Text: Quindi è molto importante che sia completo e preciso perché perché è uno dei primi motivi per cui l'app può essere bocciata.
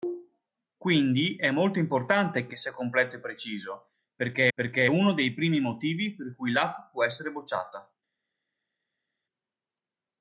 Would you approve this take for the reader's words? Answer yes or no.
yes